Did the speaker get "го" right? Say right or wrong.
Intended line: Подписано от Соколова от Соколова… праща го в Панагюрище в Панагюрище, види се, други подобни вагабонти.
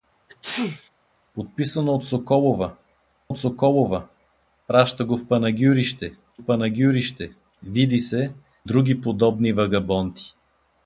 right